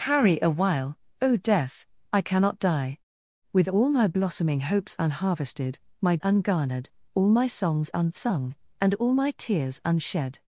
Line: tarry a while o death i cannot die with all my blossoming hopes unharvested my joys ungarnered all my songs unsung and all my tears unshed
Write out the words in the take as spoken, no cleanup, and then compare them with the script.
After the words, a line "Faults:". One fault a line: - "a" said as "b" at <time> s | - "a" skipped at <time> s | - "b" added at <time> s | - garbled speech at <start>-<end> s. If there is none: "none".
tarry a while o death i cannot die with all my blossoming hopes unharvested my ungarnered all my songs unsung and all my tears unshed
Faults:
- "joys" skipped at 6.2 s